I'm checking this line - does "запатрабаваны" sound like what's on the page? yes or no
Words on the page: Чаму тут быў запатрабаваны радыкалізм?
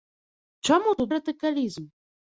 no